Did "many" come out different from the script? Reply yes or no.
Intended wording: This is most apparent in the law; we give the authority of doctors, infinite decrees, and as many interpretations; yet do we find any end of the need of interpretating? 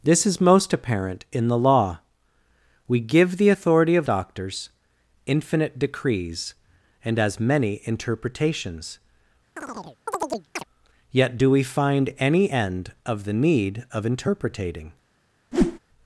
no